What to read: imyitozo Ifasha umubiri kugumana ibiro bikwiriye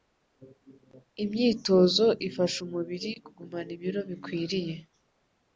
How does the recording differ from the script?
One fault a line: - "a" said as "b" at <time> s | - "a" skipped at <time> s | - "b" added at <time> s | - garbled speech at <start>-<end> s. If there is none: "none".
none